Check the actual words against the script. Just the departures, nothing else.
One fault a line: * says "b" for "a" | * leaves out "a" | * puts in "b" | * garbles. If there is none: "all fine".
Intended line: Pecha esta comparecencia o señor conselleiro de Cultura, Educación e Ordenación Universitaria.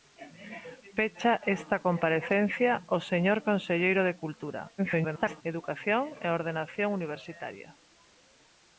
* garbles